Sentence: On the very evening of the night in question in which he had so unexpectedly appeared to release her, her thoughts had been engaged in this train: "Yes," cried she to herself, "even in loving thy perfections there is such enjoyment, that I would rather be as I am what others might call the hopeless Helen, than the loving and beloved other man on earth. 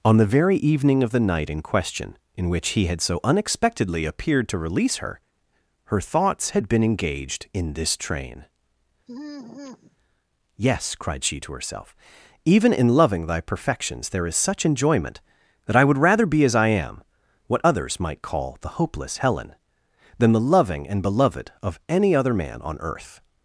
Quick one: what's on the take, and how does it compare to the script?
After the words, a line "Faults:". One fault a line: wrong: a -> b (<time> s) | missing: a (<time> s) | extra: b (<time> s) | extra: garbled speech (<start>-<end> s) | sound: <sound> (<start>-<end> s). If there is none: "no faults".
On the very evening of the night in question in which he had so unexpectedly appeared to release her, her thoughts had been engaged in this train: "Yes," cried she to herself, "even in loving thy perfections there is such enjoyment, that I would rather be as I am what others might call the hopeless Helen, than the loving and beloved of any other man on earth.
Faults:
sound: sigh (9.1-10.0 s)
extra: of any (21.6 s)